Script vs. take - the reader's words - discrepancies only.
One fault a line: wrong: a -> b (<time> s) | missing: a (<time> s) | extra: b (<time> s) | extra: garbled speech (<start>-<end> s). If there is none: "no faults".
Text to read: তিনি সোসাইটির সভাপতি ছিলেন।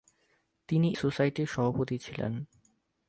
no faults